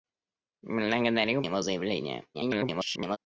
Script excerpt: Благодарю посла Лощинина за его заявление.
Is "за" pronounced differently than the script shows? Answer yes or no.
yes